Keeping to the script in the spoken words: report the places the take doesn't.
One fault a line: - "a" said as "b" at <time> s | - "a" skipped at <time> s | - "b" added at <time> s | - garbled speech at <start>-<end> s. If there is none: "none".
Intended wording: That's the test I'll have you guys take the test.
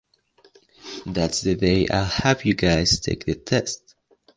- "test" said as "day" at 1.5 s